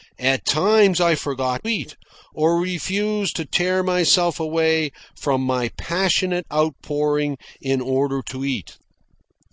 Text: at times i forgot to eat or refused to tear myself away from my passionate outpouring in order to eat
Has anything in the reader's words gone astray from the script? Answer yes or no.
yes